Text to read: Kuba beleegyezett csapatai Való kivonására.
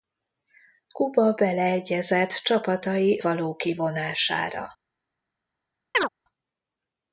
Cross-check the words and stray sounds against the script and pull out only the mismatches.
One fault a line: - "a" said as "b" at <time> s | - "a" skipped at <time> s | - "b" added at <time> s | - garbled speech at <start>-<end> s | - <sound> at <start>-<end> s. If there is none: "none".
- chirp at 5.9-6.1 s